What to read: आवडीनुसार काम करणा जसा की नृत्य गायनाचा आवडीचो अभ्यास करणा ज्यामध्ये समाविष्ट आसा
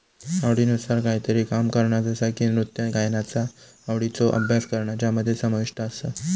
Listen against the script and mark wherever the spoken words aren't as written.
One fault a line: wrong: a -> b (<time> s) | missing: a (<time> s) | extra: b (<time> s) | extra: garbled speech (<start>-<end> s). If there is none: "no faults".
extra: कायतरी (1.0 s)